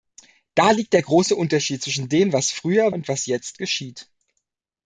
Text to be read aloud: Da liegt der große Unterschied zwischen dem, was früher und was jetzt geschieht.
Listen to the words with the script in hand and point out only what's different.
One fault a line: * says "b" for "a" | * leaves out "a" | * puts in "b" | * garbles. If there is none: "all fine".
all fine